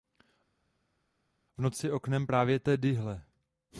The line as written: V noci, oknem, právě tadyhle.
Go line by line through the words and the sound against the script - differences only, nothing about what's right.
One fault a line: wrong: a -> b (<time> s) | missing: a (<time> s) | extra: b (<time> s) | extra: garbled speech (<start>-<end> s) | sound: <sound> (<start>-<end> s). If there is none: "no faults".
no faults